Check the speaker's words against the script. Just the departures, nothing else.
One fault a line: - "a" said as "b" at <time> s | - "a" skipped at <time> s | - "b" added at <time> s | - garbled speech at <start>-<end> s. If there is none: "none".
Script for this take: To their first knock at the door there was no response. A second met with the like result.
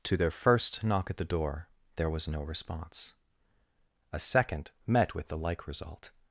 none